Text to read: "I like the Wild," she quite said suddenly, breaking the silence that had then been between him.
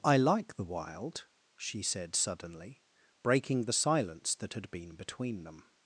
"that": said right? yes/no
yes